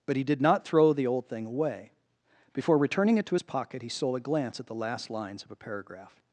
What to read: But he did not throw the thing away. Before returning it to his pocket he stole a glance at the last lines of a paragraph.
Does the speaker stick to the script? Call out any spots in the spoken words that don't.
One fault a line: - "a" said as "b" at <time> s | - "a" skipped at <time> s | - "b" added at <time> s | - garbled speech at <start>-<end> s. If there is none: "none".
- "old" added at 1.1 s